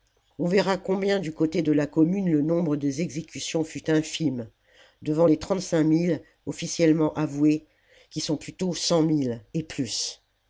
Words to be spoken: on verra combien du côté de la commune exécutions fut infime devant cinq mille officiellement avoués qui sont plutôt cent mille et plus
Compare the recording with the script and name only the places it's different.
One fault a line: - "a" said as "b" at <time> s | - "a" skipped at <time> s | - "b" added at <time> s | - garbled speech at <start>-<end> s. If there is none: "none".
- "le nombre des" added at 2.3 s
- "les trente" added at 5.2 s